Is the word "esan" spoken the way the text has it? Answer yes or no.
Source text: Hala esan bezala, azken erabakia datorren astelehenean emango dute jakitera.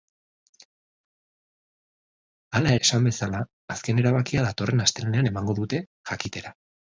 yes